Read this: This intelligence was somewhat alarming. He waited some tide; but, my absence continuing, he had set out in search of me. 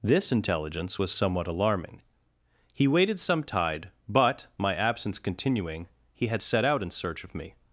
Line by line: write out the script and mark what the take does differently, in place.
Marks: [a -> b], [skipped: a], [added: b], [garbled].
This intelligence was somewhat alarming. He waited some tide; but, my absence continuing, he had set out in search of me.